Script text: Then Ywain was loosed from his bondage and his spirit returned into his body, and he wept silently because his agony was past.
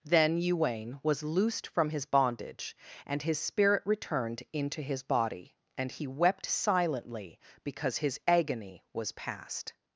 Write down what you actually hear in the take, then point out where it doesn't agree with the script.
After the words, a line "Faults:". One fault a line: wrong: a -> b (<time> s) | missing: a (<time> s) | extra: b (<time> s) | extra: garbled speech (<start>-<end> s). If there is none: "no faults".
Then Ywain was loosed from his bondage and his spirit returned into his body, and he wept silently because his agony was past.
Faults:
no faults